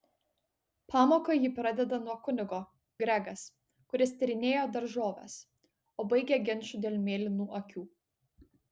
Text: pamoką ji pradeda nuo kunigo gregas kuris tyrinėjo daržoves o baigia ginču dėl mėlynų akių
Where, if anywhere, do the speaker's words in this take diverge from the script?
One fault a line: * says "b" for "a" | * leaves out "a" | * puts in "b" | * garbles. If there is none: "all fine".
all fine